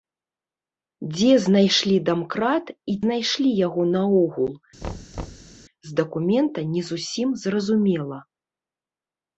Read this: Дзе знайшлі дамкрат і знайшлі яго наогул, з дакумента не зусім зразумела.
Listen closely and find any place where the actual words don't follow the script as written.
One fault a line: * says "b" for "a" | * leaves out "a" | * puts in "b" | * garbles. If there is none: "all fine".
all fine